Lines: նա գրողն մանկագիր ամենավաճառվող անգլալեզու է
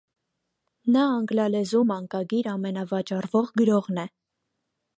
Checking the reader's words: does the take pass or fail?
fail